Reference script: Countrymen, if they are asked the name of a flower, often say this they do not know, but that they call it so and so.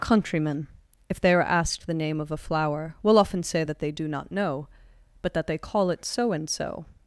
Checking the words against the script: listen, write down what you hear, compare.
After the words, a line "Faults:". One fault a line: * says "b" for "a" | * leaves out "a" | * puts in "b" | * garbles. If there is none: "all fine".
Countrymen, if they are asked the name of a flower, will often say that they do not know, but that they call it so and so.
Faults:
* puts in "will"
* says "that" for "this"